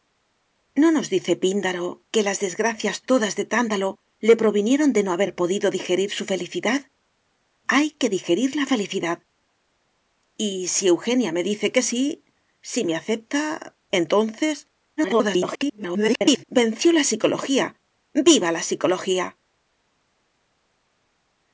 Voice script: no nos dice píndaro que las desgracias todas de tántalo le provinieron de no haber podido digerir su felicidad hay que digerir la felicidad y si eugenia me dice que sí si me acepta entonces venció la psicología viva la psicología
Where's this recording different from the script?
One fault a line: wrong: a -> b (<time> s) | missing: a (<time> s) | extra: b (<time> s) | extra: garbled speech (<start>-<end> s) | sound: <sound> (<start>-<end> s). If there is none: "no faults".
extra: garbled speech (15.0-16.4 s)